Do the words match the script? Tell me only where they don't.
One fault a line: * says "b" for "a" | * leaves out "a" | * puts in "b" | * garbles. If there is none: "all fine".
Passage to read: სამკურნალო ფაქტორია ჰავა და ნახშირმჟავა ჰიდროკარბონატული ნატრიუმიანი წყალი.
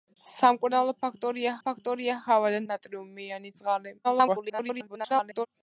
* puts in "ფაქტორია"
* leaves out "ნახშირმჟავა ჰიდროკარბონატული"
* garbles